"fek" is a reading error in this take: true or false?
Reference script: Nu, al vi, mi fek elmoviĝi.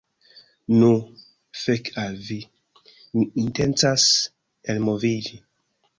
true